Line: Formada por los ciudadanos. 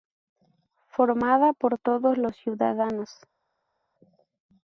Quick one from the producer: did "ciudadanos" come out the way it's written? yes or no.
yes